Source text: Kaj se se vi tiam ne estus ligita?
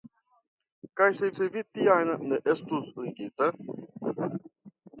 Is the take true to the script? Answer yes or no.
yes